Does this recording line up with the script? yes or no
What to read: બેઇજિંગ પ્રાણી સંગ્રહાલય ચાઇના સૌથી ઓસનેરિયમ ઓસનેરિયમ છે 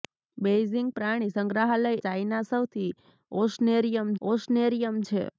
yes